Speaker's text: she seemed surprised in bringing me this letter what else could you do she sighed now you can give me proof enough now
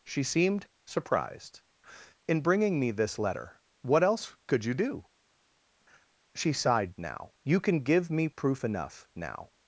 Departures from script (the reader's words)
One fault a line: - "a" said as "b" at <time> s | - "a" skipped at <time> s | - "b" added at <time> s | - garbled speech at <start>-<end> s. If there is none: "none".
none